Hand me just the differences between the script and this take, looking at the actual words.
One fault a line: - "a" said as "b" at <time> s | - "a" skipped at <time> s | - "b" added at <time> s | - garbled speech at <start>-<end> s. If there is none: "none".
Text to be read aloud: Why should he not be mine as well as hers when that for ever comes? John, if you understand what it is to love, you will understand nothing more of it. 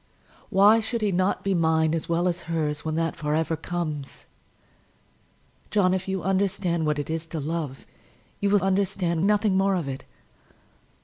none